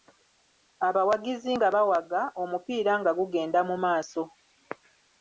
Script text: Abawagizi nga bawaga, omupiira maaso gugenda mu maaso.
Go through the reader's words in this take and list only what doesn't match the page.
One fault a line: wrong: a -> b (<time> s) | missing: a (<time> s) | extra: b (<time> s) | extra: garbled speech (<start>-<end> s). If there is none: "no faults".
wrong: maaso -> nga (3.0 s)